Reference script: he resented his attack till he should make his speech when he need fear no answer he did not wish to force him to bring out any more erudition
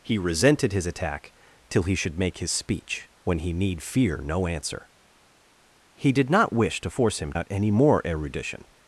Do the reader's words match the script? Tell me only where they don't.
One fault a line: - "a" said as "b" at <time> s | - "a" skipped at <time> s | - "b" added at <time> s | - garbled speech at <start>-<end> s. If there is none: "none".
- "to bring" skipped at 7.3 s